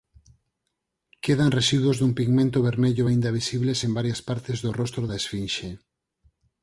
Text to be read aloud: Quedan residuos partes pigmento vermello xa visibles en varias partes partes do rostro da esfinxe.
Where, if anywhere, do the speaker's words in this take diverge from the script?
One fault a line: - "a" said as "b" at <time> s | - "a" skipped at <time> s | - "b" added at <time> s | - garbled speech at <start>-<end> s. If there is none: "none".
- "partes" said as "dun" at 2.0 s
- "xa" said as "aínda" at 3.0 s
- "partes" skipped at 4.6 s